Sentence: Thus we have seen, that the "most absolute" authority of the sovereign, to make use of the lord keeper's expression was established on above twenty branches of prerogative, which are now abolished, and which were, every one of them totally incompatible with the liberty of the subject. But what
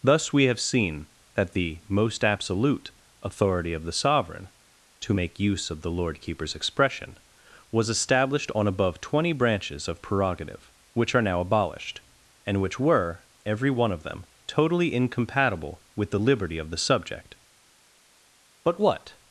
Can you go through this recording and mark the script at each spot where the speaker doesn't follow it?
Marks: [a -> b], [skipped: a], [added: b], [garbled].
Thus we have seen, that the "most absolute" authority of the sovereign, to make use of the lord keeper's expression was established on above twenty branches of prerogative, which are now abolished, and which were, every one of them totally incompatible with the liberty of the subject. But what